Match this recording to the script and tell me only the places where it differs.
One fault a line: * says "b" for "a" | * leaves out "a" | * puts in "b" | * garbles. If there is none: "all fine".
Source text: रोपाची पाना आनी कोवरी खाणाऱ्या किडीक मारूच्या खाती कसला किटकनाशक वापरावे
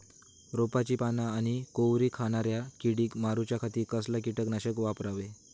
all fine